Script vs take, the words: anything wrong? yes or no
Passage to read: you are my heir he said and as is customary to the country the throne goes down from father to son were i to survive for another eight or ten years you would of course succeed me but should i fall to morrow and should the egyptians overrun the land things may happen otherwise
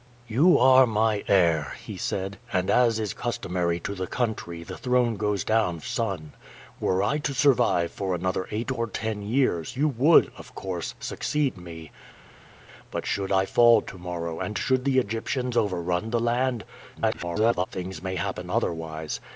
yes